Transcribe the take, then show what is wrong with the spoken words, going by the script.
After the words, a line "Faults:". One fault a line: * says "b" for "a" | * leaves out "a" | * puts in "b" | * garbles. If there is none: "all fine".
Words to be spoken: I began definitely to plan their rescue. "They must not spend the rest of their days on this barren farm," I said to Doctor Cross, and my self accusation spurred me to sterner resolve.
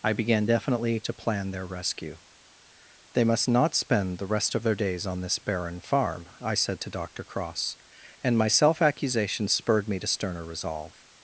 I began definitely to plan their rescue. "They must not spend the rest of their days on this barren farm," I said to Doctor Cross, and my self accusation spurred me to sterner resolve.
Faults:
all fine